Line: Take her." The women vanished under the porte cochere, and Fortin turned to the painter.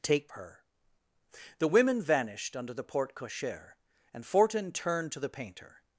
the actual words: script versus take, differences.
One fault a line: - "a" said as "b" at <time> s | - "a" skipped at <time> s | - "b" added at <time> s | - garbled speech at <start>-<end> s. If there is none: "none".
none